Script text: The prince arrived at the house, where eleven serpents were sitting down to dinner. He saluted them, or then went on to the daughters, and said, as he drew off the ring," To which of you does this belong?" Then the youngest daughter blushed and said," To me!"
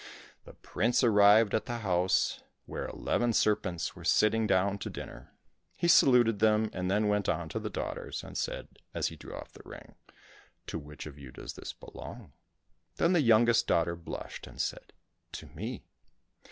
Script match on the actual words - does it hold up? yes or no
no